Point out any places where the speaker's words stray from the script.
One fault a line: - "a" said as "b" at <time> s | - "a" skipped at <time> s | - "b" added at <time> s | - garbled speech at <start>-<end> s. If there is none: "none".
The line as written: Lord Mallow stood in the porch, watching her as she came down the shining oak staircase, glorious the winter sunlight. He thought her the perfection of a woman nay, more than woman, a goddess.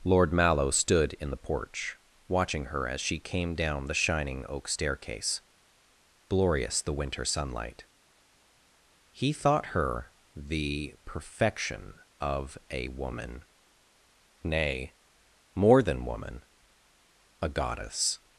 none